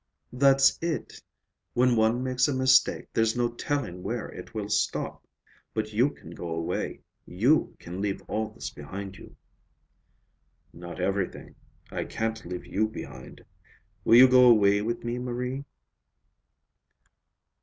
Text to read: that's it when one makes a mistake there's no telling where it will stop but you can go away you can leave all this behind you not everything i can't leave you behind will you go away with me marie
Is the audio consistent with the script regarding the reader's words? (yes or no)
yes